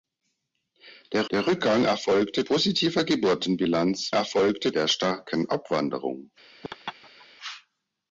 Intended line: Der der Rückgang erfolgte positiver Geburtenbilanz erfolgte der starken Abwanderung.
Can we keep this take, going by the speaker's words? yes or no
yes